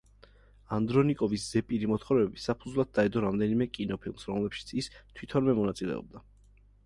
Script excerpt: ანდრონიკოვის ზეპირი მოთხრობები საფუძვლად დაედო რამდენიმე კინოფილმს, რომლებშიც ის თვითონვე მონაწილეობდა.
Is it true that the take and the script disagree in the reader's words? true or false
false